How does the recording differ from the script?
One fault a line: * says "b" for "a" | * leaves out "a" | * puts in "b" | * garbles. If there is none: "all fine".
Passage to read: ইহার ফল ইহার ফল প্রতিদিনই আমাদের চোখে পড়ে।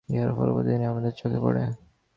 * leaves out "ইহার ফল"